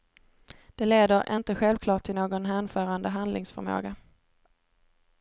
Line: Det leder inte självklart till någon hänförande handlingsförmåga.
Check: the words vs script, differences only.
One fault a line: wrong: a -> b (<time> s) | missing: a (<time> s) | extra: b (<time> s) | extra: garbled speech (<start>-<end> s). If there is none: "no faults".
no faults